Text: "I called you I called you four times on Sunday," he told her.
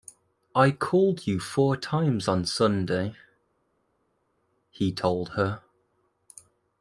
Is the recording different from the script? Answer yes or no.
yes